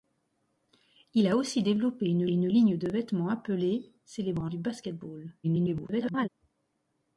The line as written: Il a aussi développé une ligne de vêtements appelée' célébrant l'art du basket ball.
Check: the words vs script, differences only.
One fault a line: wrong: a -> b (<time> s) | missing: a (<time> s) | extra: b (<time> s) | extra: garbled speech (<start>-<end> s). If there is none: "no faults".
extra: une (2.3 s)
missing: l'art (4.5 s)
extra: garbled speech (5.4-6.3 s)